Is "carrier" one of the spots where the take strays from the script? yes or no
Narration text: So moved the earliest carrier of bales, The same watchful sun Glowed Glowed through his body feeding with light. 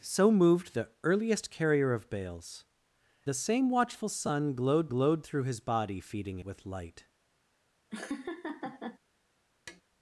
no